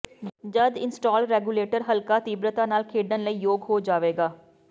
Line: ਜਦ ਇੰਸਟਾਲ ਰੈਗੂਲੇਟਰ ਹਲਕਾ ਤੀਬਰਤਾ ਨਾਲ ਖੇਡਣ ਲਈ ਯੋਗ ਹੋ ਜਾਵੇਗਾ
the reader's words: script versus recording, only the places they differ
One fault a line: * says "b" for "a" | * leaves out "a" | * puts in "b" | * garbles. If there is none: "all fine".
all fine